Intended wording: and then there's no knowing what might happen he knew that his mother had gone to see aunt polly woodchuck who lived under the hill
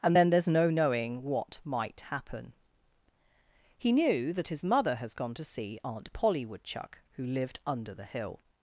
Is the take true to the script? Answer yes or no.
no